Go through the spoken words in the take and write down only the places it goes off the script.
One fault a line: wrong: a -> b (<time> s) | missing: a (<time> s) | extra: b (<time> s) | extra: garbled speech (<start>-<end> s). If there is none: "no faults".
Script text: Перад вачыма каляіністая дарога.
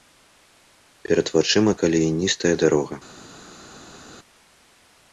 no faults